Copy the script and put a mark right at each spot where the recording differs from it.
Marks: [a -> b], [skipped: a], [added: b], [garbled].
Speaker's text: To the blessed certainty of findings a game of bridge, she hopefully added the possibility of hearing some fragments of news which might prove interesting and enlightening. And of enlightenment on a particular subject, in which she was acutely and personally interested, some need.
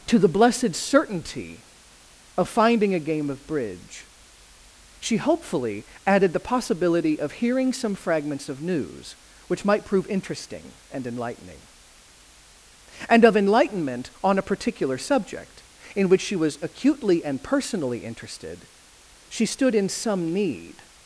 To the blessed certainty of [findings -> finding] a game of bridge, she hopefully added the possibility of hearing some fragments of news which might prove interesting and enlightening. And of enlightenment on a particular subject, in which she was acutely and personally interested, [added: she stood in] some need.